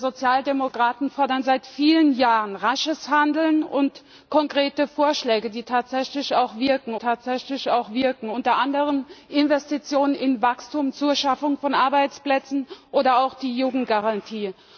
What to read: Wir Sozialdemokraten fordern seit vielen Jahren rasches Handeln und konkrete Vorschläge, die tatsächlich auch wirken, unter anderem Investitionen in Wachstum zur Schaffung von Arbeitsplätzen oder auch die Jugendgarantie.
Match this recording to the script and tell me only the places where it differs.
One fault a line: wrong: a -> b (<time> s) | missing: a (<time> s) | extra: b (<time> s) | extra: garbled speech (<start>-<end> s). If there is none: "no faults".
extra: tatsächlich auch wirken (6.9 s)